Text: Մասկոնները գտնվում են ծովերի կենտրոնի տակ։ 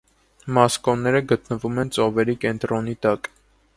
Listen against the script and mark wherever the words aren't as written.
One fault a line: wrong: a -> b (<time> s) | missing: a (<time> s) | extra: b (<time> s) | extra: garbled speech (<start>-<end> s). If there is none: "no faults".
no faults